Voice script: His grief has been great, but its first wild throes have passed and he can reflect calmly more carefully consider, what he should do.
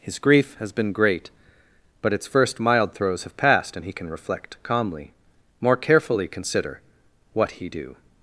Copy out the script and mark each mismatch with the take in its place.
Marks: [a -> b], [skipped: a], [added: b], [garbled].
His grief has been great, but its first [wild -> mild] throes have passed and he can reflect calmly more carefully consider, what he [skipped: should] do.